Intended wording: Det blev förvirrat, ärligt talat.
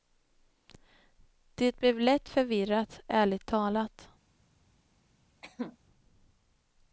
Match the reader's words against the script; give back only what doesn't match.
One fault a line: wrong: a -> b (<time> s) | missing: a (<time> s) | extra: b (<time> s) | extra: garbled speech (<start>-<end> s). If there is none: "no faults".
extra: lätt (2.0 s)